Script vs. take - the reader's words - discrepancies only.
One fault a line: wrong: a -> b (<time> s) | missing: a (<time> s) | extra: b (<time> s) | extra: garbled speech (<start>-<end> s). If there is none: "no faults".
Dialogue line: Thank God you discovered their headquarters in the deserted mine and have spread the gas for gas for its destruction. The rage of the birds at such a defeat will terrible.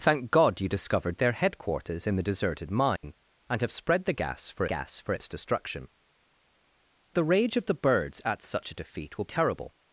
no faults